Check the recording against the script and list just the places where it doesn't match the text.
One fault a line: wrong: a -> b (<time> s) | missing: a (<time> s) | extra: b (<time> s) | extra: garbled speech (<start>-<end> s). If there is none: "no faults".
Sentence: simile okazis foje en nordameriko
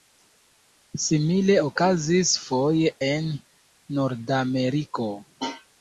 no faults